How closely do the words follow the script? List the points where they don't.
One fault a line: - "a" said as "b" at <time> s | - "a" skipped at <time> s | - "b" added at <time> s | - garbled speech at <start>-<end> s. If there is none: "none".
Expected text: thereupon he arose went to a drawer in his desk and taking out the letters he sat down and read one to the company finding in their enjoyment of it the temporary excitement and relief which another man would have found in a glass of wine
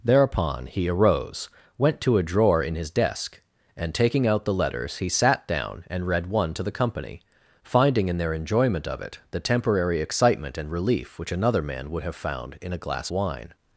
- "of" skipped at 13.1 s